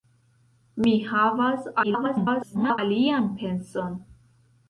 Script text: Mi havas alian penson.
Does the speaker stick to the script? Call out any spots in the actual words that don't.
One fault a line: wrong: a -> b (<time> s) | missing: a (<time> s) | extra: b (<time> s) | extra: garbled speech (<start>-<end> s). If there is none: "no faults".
extra: garbled speech (1.8-2.8 s)